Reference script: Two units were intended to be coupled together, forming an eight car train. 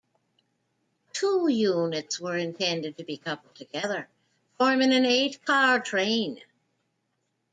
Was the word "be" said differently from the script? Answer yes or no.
no